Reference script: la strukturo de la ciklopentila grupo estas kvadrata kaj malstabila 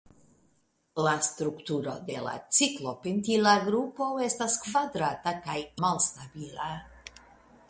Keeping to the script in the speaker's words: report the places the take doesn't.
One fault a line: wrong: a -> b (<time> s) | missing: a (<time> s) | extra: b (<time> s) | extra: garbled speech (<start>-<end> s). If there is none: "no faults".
no faults